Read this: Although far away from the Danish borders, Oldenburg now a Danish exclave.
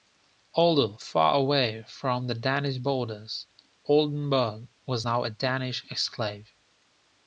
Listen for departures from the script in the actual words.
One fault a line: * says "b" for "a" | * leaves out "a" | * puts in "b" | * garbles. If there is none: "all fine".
* puts in "was"